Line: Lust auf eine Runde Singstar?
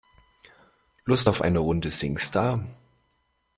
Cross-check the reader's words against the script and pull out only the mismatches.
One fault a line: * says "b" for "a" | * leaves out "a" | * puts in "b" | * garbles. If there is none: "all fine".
all fine